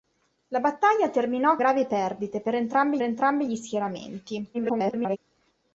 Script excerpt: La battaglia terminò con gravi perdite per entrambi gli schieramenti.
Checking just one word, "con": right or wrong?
wrong